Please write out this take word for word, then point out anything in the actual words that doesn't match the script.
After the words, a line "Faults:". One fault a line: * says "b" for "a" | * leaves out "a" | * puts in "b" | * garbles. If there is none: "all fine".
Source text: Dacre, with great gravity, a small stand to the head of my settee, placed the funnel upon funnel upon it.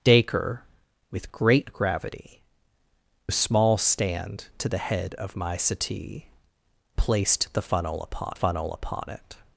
Dacre, with great gravity, a small stand to the head of my settee, placed the funnel upon funnel upon it.
Faults:
all fine